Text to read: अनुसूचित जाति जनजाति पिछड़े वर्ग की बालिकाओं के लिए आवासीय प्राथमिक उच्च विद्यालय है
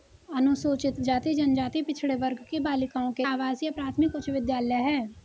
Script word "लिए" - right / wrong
wrong